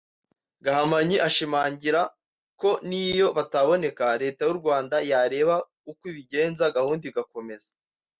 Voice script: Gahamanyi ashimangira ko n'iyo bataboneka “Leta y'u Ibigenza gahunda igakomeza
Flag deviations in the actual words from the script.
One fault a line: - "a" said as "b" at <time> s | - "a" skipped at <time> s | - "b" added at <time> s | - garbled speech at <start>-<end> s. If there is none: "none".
- "Rwanda yareba uko" added at 4.6 s